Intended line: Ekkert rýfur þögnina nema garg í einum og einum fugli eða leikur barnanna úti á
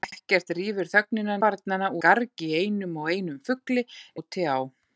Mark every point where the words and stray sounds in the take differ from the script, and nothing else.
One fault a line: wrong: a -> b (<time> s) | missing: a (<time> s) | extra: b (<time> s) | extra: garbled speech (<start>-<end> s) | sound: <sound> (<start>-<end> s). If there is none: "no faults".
wrong: nema -> barnanna (1.5 s)
missing: eða leikur barnanna (3.9 s)